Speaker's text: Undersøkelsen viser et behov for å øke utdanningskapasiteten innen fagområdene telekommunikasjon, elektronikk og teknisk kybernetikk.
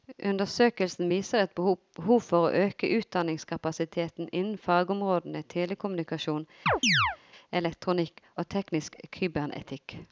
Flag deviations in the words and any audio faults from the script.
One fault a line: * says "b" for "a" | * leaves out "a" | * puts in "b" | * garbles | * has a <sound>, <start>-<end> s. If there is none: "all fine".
* has a chirp, 6.7-7.2 s